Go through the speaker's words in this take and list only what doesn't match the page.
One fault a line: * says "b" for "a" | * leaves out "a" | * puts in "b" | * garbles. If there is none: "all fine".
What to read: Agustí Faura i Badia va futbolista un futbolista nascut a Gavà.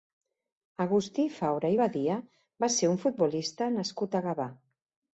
* says "ser" for "futbolista"